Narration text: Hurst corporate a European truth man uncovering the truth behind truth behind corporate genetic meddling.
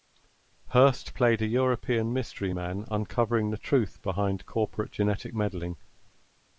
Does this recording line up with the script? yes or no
no